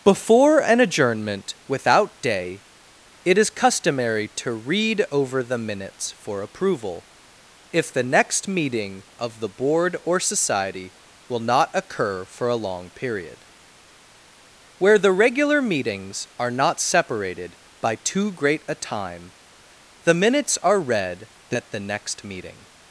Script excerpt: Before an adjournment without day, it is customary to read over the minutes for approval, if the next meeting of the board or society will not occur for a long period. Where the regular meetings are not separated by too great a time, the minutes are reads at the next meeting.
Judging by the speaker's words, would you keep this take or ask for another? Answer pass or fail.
fail